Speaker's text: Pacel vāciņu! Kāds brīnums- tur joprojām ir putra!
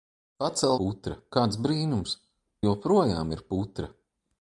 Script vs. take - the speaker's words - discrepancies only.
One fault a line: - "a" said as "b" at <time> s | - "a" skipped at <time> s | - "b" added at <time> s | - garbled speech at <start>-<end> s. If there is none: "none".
- "vāciņu" said as "putra" at 0.8 s
- "tur" skipped at 2.2 s